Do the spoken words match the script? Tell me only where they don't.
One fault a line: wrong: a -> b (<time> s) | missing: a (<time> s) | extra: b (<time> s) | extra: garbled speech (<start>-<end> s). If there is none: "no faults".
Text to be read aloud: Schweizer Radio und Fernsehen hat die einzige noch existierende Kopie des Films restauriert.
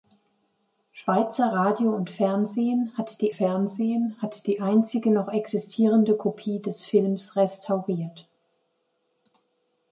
extra: Fernsehen hat die (3.3 s)